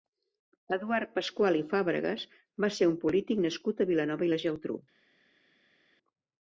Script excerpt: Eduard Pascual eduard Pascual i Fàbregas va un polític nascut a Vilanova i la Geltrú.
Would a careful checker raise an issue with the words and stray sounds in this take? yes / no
yes